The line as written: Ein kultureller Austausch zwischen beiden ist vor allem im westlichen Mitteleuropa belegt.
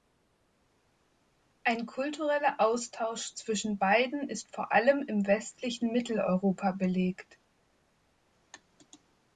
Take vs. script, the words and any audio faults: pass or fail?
pass